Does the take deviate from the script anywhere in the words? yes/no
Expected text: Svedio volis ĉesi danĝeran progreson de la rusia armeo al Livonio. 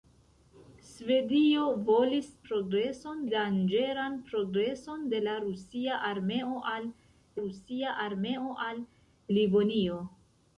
yes